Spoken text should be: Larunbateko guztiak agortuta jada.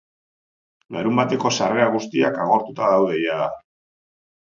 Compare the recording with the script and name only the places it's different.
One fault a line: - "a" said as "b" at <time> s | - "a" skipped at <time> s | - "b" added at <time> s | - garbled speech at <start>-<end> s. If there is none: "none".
- "sarrera" added at 1.6 s
- "daude" added at 3.0 s